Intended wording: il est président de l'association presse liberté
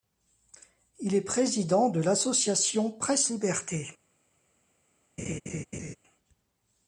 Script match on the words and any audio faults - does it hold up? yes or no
no